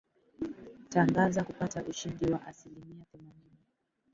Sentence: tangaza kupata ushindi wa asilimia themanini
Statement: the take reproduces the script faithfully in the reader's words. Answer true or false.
true